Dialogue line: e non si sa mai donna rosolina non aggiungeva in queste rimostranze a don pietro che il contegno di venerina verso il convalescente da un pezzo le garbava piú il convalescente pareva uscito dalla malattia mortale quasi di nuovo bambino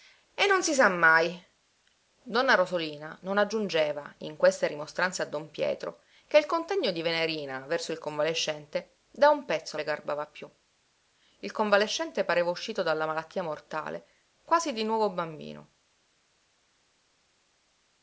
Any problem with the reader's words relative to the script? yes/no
no